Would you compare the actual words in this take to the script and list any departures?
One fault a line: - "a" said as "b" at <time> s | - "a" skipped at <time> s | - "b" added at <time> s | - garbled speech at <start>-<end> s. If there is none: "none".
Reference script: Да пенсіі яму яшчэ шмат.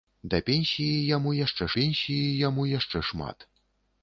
- "пенсіі яму яшчэ" added at 1.8 s